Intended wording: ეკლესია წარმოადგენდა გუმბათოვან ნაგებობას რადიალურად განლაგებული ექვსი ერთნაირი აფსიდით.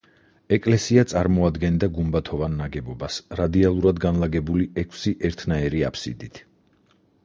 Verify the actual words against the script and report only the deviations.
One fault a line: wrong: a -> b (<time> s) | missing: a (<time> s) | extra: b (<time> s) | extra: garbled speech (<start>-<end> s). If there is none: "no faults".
no faults